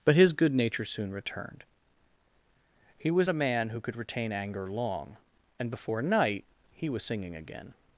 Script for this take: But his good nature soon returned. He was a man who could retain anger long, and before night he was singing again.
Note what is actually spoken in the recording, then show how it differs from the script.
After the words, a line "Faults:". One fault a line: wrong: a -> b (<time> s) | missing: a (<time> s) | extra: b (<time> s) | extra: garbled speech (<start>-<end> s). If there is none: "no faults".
But his good nature soon returned. He was a man who could retain anger long, and before night he was singing again.
Faults:
no faults